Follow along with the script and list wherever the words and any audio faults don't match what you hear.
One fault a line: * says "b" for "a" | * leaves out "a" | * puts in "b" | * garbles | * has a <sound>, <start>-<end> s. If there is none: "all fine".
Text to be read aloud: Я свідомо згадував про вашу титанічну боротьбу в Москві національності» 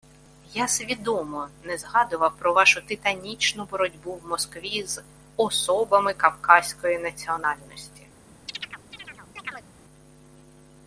* puts in "не"
* puts in "з особами кавказької"
* has a chirp, 8.5-9.7 s